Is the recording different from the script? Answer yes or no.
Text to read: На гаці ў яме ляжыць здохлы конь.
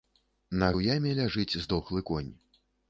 yes